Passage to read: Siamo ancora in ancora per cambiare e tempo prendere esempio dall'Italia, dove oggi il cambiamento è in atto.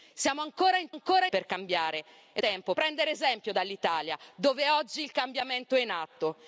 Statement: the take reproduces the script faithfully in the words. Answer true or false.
true